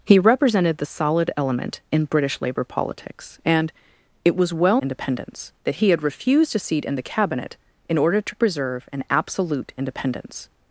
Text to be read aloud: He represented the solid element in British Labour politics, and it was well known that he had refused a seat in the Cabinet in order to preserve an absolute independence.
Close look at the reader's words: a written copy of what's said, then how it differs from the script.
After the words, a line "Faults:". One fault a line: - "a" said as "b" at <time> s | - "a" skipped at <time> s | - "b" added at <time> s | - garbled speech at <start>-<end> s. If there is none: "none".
He represented the solid element in British Labour politics, and it was well independence that he had refused a seat in the Cabinet in order to preserve an absolute independence.
Faults:
- "known" said as "independence" at 4.8 s